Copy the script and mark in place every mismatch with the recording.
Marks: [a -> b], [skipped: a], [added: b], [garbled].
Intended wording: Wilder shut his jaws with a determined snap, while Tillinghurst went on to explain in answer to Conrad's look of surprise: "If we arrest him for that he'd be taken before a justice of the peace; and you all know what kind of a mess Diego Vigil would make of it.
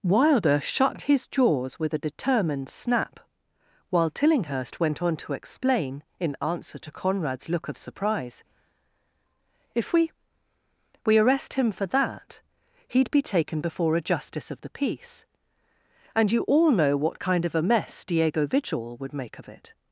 Wilder shut his jaws with a determined snap, while Tillinghurst went on to explain in answer to Conrad's look of surprise: "If we [added: we] arrest him for that he'd be taken before a justice of the peace; and you all know what kind of a mess Diego Vigil would make of it.